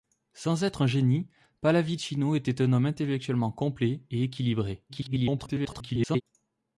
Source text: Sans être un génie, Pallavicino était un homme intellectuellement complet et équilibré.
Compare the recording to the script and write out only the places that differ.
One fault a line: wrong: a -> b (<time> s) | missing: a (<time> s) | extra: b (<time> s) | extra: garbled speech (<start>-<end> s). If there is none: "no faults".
extra: garbled speech (4.9-6.2 s)